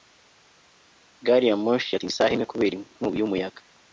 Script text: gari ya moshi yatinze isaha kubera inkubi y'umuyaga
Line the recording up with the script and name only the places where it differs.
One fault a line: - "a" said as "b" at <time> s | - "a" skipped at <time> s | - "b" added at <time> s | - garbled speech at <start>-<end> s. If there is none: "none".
- "imwe" added at 2.3 s